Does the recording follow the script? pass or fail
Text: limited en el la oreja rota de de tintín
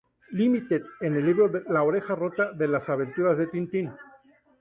fail